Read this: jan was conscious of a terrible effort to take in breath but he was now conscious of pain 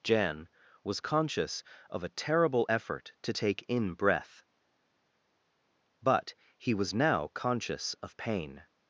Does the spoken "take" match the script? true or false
true